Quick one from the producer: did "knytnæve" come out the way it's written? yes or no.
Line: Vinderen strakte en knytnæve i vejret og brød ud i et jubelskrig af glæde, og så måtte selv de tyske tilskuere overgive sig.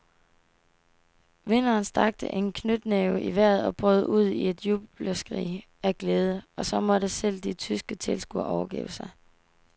yes